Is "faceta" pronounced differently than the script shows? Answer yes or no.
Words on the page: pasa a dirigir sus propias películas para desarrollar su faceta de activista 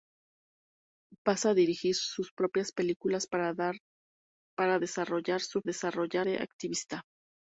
yes